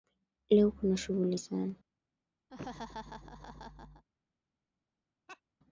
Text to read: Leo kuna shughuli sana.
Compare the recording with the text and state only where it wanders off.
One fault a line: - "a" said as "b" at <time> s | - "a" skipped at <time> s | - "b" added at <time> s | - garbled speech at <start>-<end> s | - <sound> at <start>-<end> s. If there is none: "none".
- laugh at 2.5-4.0 s
- laugh at 5.3-5.4 s